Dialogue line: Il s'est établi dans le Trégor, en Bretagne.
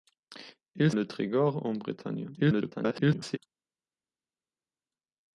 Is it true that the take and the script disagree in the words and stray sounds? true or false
true